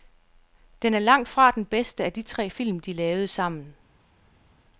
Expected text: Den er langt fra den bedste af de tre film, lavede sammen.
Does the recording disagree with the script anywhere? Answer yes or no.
yes